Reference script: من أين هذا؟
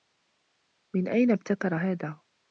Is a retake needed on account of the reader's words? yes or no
yes